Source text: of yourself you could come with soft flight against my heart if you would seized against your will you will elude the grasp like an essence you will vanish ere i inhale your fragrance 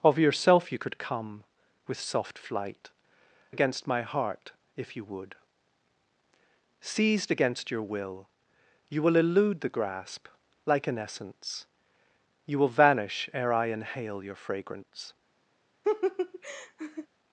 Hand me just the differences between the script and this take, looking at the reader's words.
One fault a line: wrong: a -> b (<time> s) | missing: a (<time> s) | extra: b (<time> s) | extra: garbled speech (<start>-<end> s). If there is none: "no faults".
no faults